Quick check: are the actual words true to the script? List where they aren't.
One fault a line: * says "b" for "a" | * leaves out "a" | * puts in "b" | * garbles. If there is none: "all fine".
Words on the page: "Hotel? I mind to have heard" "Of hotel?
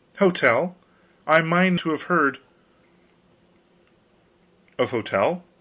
all fine